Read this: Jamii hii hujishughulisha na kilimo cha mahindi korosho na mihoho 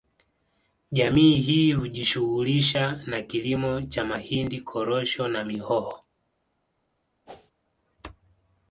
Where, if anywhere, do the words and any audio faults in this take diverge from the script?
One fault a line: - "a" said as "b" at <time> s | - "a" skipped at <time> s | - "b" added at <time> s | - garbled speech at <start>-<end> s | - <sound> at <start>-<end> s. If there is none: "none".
- whoosh at 7.3-7.5 s